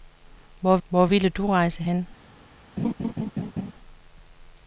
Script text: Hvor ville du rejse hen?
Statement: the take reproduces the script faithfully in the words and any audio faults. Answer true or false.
false